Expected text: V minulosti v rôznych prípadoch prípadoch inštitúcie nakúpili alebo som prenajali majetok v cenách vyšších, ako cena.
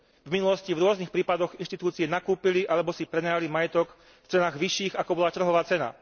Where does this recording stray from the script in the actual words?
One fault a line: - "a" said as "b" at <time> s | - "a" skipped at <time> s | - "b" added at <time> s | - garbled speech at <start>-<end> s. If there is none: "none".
- "prípadoch" skipped at 1.6 s
- "som" said as "si" at 2.9 s
- "bola trhová" added at 5.2 s